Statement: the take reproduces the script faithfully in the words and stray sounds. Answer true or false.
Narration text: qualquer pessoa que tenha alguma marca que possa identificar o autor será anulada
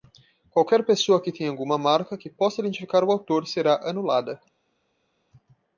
true